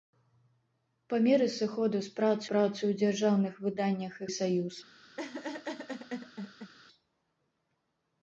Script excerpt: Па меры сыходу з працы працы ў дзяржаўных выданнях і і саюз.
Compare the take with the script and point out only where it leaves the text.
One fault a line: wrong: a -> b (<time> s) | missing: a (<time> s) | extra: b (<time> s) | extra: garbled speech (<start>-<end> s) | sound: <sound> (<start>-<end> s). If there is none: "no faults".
sound: laugh (5.2-6.7 s)